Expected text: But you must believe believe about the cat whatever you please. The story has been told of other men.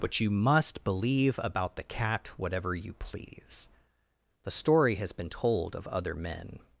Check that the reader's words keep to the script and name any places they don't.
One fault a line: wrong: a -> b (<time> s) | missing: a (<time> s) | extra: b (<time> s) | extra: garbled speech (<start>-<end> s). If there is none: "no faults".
missing: believe (1.4 s)